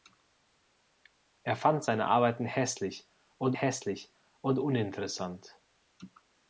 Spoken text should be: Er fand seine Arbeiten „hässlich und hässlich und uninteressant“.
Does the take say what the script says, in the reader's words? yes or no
yes